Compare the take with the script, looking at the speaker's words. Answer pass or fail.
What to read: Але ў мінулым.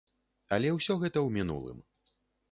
fail